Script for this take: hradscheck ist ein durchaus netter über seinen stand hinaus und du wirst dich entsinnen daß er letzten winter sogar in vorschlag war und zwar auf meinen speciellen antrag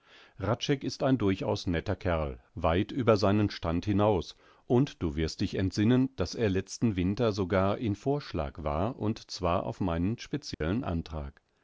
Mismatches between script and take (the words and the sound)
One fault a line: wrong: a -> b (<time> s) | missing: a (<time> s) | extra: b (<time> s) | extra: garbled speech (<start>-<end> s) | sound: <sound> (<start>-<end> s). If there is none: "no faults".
extra: kerl weit (1.9 s)
sound: dropout (10.5-10.6 s)